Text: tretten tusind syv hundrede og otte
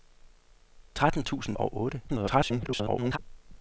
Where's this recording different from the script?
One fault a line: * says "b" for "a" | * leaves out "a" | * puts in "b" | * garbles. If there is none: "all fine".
* leaves out "syv hundrede"
* garbles